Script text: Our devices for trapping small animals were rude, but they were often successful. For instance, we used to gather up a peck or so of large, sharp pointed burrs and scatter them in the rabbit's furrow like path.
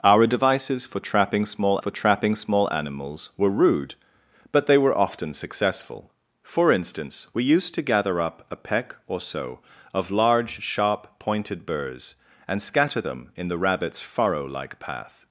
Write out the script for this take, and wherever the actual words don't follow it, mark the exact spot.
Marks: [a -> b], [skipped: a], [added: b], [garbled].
Our devices for trapping small [added: for trapping small] animals were rude, but they were often successful. For instance, we used to gather up a peck or so of large, sharp pointed burrs and scatter them in the rabbit's furrow like path.